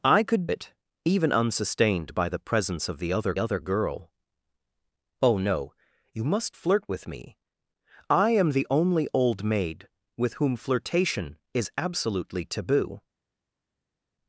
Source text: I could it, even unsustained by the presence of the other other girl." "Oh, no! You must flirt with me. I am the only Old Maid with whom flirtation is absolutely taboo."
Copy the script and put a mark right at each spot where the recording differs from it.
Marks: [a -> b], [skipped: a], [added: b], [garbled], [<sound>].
I could it, even unsustained by the presence of the other other girl." "Oh, no! You must flirt with me. I am the only Old Maid with whom flirtation is absolutely taboo."